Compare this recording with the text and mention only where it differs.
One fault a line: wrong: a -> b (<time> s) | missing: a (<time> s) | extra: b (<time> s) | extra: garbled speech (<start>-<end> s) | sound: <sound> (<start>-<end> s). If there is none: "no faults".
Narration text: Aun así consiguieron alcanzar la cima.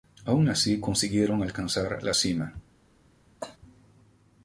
sound: cough (3.4-3.6 s)